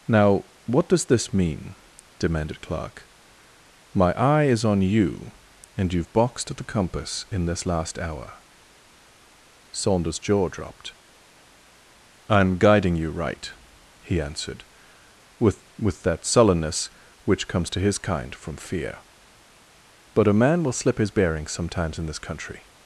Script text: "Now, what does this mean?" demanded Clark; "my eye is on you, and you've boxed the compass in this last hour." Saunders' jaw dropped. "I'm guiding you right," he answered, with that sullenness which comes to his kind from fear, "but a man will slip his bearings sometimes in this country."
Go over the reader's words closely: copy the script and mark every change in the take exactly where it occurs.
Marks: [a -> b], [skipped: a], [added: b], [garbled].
"Now, what does this mean?" demanded Clark; "my eye is on you, and you've boxed the compass in this last hour." Saunders' jaw dropped. "I'm guiding you right," he answered, with [added: with] that sullenness which comes to his kind from fear, "but a man will slip his bearings sometimes in this country."